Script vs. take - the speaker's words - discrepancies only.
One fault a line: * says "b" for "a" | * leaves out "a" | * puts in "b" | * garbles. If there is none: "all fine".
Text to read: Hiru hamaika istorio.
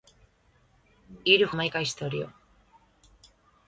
all fine